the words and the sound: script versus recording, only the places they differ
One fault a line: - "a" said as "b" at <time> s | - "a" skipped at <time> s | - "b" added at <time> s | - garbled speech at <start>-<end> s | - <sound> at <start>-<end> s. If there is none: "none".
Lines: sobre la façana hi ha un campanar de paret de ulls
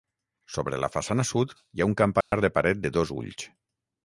- "sud" added at 1.3 s
- dropout at 2.2-2.3 s
- "dos" added at 3.0 s